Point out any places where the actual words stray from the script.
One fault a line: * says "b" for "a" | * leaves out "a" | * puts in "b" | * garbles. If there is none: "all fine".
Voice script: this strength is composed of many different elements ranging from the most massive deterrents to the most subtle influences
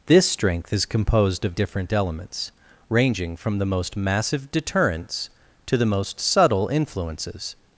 * leaves out "many"